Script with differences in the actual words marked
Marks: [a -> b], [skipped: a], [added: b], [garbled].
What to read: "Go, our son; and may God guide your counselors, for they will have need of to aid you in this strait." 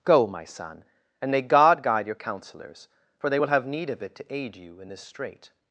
"Go, [our -> my] son; and may God guide your counselors, for they will have need of [added: it] to aid you in this strait."